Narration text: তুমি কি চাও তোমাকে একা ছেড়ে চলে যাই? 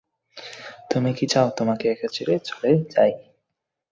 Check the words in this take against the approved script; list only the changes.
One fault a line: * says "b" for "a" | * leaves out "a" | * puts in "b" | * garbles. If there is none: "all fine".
all fine